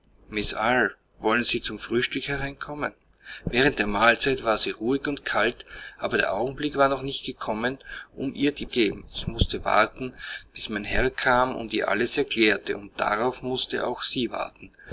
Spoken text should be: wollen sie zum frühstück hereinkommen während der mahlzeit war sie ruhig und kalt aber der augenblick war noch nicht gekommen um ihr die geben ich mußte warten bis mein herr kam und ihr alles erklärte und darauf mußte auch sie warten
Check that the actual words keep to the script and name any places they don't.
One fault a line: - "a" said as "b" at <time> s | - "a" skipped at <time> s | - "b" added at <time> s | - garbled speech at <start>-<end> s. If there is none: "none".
none